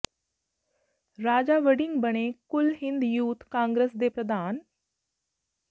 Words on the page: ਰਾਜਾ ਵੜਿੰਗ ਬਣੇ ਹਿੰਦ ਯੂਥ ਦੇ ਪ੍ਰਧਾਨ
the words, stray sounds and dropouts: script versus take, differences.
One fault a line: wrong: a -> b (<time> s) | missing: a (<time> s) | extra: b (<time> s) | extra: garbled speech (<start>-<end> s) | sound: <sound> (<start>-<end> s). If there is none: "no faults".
extra: ਕੁਲ (2.5 s)
extra: ਕਾਂਗਰਸ (3.5 s)